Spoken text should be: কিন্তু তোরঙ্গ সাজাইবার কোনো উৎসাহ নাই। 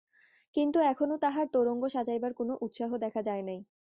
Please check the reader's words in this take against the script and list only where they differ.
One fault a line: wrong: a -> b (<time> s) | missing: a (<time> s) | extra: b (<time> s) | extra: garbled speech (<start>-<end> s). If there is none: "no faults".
extra: এখনো তাহার (0.8 s)
extra: দেখা যায় (3.0 s)